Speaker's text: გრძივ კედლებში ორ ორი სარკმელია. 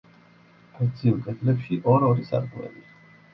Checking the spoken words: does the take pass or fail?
pass